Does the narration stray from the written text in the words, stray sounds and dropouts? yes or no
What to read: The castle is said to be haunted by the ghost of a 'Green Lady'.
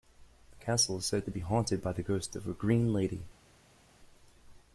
no